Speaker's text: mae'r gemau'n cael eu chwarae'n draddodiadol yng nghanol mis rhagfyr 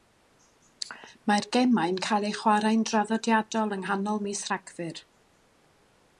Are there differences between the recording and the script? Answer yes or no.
no